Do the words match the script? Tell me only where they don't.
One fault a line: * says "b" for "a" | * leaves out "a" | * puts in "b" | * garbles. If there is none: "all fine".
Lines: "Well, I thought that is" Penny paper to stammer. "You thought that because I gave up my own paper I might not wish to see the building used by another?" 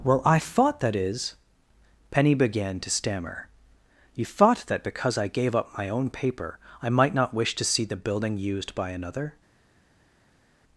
* says "began" for "paper"